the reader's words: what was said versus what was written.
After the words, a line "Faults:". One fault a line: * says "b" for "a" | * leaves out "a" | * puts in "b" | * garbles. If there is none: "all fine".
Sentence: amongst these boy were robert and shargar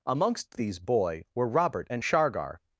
amongst these boy were robert and shargar
Faults:
all fine